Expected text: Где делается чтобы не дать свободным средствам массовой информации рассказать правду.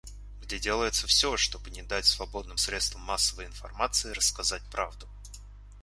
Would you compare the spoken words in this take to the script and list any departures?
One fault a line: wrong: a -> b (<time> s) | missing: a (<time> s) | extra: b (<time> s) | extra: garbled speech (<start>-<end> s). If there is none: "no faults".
extra: все (1.0 s)